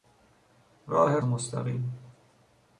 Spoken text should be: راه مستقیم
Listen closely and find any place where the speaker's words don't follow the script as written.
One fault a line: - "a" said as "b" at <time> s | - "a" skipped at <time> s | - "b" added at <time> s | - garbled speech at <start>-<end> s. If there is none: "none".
none